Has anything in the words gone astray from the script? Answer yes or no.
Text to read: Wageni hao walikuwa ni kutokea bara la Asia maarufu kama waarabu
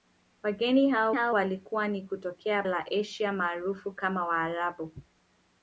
yes